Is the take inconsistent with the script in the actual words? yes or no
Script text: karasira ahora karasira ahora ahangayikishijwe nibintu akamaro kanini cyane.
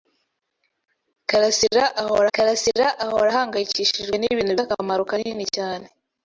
no